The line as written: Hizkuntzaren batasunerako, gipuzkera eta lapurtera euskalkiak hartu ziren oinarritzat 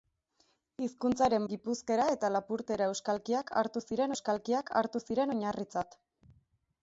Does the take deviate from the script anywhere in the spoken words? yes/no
yes